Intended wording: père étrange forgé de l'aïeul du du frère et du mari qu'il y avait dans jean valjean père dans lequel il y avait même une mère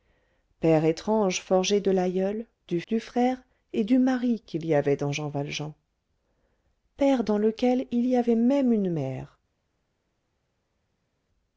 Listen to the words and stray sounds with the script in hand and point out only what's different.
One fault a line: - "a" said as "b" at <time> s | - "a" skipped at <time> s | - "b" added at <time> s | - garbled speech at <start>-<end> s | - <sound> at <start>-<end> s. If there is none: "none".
none